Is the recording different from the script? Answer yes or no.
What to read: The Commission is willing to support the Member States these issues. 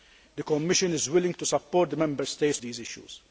no